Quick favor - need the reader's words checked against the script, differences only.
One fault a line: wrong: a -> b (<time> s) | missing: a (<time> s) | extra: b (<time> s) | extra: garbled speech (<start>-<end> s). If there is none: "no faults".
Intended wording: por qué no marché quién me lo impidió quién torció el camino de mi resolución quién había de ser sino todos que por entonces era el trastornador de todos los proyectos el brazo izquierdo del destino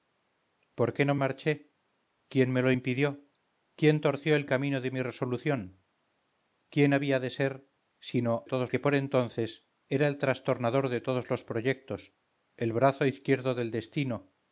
no faults